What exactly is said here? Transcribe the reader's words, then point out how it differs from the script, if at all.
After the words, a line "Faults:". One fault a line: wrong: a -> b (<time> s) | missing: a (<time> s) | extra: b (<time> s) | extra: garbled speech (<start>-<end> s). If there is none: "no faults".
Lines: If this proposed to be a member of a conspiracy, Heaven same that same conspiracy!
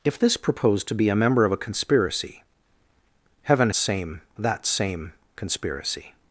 If this proposed to be a member of a conspiracy, Heaven same that same conspiracy!
Faults:
no faults